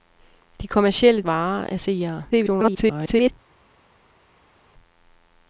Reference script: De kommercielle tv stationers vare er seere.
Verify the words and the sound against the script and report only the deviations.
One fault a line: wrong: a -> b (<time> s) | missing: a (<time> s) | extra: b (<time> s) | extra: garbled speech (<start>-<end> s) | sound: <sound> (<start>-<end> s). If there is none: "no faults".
missing: tv stationers (1.2 s)
extra: garbled speech (2.3-3.3 s)